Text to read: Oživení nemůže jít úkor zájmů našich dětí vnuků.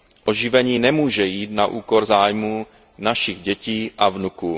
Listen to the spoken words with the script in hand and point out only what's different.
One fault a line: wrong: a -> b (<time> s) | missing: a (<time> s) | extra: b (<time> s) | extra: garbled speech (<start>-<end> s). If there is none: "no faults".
extra: na (1.5 s)
extra: a (4.0 s)